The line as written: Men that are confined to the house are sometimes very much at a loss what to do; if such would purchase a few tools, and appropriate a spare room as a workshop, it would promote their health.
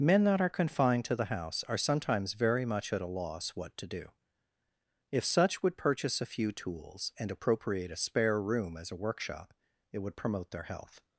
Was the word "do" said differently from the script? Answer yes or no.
no